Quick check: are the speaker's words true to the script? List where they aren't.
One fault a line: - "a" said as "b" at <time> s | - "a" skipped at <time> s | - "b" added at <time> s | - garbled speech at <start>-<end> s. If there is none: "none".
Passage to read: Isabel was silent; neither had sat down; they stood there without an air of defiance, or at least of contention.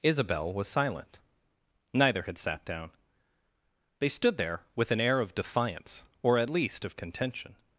- "without" said as "with" at 4.8 s